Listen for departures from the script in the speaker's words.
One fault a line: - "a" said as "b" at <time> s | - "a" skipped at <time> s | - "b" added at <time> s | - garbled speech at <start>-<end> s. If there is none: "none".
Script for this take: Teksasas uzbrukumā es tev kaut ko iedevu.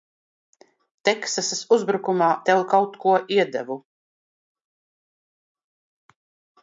- "es" skipped at 2.3 s